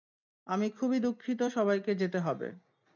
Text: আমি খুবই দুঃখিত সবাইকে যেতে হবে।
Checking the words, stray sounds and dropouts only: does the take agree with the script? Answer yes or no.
yes